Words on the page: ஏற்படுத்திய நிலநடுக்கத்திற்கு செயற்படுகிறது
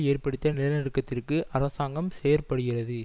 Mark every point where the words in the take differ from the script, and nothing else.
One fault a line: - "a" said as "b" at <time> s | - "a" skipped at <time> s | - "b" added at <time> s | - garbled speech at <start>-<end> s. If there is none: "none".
- "அரசாங்கம்" added at 1.5 s